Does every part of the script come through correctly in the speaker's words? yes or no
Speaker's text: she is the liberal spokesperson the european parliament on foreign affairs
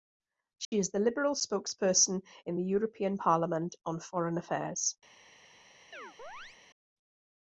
no